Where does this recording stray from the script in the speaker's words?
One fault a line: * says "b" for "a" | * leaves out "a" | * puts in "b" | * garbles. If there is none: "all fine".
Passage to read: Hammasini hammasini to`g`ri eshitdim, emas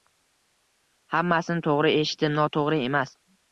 * leaves out "hammasini"
* puts in "noto`g`ri"